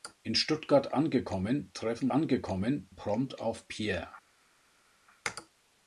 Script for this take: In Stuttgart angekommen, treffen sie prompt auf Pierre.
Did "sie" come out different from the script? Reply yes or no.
yes